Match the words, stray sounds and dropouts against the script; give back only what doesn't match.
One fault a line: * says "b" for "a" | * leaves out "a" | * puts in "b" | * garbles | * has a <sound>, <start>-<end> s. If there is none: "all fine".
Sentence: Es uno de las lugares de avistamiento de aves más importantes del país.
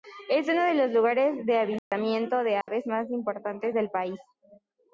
* says "los" for "las"
* has a dropout, 1.8-1.9 s
* has a dropout, 2.6-2.7 s